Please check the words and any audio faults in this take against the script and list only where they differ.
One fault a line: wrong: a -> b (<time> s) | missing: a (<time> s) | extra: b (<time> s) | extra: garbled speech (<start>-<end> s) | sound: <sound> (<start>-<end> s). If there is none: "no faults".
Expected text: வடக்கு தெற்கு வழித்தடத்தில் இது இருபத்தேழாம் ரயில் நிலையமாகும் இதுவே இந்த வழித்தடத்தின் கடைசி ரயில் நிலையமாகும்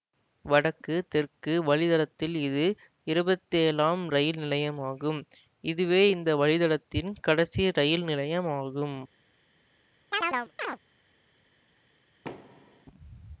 sound: chirp (10.1-10.8 s)
sound: thud (12.2-12.9 s)